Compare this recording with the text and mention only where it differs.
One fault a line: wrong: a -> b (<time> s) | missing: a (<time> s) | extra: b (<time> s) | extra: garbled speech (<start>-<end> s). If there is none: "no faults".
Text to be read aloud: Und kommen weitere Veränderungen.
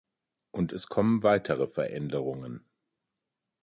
extra: es (0.7 s)